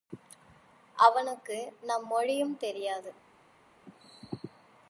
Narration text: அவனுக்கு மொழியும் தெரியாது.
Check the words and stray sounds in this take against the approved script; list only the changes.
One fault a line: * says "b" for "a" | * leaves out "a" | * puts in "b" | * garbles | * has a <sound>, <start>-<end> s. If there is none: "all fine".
* puts in "நம்"